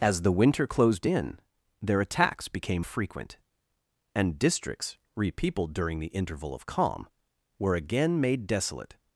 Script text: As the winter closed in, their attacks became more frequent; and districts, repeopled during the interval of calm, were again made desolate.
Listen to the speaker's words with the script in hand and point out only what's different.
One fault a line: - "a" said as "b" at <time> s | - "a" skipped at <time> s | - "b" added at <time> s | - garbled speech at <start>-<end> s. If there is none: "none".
- "more" skipped at 2.8 s